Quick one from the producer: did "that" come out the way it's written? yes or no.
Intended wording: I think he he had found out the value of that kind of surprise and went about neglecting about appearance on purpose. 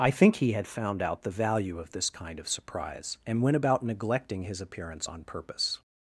no